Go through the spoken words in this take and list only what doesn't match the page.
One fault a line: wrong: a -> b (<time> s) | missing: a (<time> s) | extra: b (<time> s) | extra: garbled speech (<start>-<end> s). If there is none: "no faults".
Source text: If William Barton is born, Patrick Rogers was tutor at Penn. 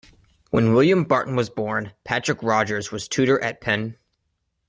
wrong: If -> When (0.5 s)
wrong: is -> was (1.4 s)